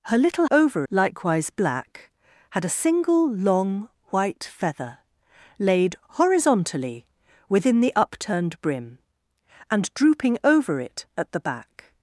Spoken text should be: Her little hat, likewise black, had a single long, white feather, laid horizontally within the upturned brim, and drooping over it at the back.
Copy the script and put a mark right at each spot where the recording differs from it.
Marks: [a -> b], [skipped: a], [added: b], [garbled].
Her little [hat, -> over] likewise black, had a single long, white feather, laid horizontally within the upturned brim, and drooping over it at the back.